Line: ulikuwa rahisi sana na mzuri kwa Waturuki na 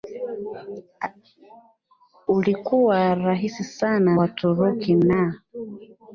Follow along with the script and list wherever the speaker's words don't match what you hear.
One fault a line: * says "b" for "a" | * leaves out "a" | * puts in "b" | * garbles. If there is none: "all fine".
* leaves out "na mzuri kwa"